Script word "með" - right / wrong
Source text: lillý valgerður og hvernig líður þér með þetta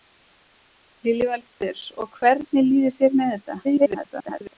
right